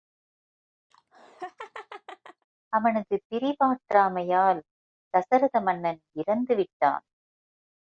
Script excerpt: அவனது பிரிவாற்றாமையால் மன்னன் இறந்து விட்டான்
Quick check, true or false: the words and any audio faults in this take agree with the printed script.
false